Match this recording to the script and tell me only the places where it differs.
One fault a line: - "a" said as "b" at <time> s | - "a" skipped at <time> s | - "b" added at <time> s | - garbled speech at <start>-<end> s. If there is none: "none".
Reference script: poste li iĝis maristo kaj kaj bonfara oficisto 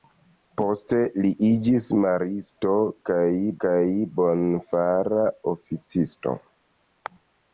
none